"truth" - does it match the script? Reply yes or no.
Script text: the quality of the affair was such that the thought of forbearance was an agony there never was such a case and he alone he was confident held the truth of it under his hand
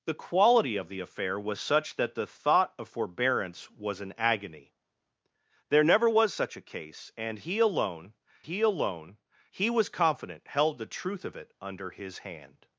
yes